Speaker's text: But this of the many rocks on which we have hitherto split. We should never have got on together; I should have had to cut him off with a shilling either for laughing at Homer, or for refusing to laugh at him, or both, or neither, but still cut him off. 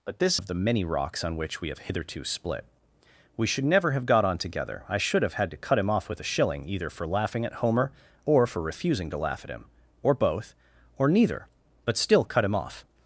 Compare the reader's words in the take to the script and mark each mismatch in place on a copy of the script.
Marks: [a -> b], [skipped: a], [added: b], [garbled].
But this of the many rocks on which we have hitherto split. We should never have got on together; I should have had to cut him off with a shilling either for laughing at Homer, or for refusing to laugh at him, or both, or neither, but still cut him off.